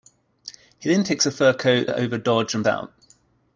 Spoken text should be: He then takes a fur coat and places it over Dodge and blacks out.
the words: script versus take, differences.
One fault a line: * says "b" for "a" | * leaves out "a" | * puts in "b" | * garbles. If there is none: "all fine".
* leaves out "and places"
* leaves out "blacks"